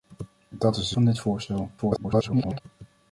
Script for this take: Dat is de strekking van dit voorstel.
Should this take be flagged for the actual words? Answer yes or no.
yes